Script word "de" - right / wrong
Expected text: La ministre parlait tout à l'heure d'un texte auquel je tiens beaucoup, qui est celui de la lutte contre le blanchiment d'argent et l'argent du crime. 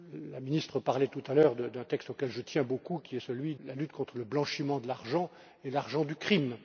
wrong